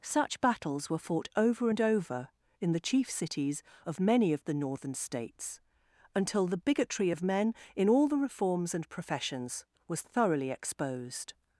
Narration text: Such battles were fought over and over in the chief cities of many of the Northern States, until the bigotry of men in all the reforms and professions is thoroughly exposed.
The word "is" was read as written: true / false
false